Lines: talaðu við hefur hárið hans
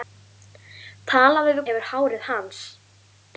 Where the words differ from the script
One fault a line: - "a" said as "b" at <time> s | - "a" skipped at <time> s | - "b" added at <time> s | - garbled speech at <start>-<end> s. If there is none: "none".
none